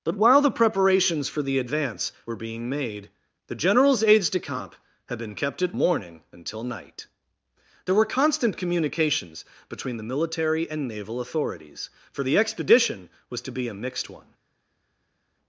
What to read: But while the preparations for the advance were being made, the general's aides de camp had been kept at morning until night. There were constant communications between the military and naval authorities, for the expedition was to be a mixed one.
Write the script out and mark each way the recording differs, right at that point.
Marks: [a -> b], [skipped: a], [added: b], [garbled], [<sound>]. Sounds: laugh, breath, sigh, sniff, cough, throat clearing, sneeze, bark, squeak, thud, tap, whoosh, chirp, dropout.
But while the preparations for the advance were being made, the general's aides de camp had been kept at morning until night. There were constant communications between the military and naval authorities, for the expedition was to be a mixed one.